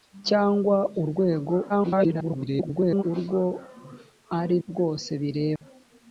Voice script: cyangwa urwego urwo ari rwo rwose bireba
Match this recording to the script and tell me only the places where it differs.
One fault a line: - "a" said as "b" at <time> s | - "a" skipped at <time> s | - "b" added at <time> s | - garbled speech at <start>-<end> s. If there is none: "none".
- garbled speech at 1.7-3.0 s
- "rwo" skipped at 4.6 s